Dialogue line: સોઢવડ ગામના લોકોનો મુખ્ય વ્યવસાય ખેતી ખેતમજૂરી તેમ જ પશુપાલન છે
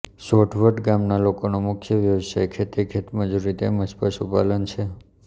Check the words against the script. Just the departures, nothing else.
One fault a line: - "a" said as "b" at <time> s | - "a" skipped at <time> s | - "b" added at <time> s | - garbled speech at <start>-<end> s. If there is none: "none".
none